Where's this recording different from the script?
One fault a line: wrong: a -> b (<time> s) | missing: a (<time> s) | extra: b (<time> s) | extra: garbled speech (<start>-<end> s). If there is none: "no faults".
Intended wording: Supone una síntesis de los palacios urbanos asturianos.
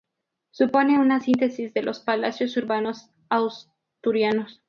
no faults